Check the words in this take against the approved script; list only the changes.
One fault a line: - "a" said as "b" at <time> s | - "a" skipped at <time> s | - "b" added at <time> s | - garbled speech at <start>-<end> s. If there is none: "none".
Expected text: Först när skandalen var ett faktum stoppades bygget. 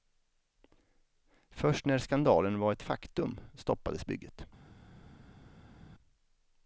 none